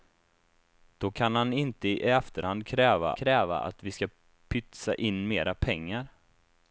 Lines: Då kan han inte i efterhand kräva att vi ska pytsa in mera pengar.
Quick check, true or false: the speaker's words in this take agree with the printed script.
false